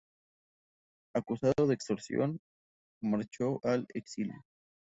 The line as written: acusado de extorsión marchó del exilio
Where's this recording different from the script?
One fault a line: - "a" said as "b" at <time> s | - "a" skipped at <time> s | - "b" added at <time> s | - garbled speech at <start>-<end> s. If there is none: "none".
- "del" said as "al" at 3.6 s